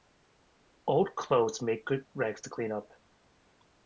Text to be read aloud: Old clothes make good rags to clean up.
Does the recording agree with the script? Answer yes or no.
yes